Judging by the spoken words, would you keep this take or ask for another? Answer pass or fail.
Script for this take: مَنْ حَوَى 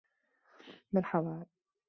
pass